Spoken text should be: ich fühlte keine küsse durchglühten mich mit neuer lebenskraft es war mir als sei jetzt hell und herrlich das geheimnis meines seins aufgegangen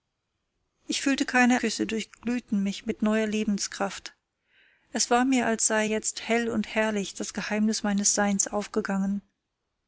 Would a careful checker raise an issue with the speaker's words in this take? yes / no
no